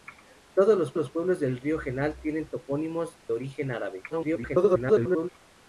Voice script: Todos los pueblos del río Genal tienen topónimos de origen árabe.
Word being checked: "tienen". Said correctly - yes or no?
yes